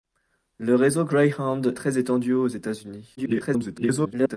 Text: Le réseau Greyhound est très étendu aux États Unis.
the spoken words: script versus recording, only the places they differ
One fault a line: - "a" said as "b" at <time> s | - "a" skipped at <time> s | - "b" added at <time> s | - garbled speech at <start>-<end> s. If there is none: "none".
- "est" skipped at 1.7 s
- garbled speech at 3.2-4.4 s